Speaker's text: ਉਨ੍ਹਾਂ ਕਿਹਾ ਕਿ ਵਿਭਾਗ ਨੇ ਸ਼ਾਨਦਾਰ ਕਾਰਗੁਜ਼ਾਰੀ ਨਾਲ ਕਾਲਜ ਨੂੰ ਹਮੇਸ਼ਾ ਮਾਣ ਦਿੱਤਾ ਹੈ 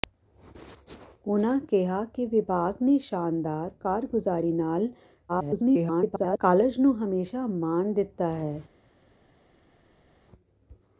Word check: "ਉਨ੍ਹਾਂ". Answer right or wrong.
right